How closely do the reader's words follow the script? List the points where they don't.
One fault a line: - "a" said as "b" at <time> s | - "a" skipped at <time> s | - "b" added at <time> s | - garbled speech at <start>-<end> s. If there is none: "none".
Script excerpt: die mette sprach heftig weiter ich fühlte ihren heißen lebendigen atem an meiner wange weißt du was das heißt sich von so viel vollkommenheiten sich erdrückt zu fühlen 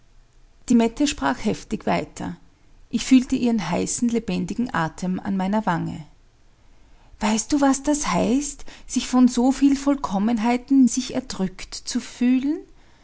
none